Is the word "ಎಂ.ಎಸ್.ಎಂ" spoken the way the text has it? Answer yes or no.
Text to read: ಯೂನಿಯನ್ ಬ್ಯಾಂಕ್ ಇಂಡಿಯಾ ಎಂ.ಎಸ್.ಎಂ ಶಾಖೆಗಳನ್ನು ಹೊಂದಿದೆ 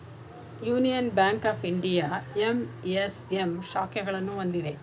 yes